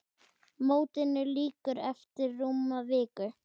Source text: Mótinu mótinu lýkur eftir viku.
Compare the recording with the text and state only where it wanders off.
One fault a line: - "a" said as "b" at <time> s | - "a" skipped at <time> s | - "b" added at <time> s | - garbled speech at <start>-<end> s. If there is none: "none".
- "mótinu" skipped at 1.2 s
- "rúma" added at 2.4 s